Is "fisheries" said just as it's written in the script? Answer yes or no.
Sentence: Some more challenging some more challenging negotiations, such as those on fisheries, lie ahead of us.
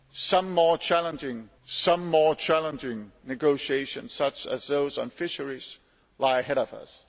yes